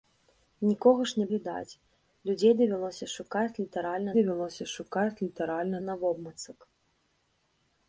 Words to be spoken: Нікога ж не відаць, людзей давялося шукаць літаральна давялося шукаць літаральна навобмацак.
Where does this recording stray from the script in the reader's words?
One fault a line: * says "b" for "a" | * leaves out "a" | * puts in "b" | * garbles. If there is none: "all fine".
all fine